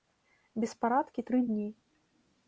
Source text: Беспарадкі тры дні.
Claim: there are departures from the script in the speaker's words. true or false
false